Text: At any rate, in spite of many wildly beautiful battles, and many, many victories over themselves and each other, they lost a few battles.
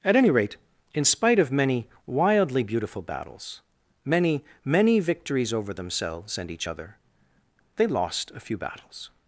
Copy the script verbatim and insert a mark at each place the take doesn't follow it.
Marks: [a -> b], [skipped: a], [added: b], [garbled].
At any rate, in spite of many wildly beautiful battles, [skipped: and] many, many victories over themselves and each other, they lost a few battles.